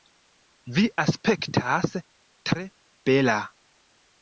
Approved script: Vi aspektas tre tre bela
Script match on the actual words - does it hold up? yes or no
no